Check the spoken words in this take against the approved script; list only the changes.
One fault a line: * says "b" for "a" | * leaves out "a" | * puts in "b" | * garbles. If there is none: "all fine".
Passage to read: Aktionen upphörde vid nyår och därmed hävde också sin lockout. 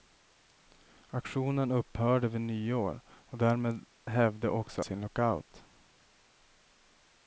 all fine